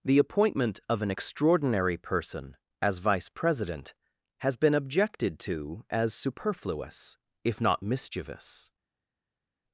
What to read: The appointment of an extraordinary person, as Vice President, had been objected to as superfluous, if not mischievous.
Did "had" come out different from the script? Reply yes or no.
yes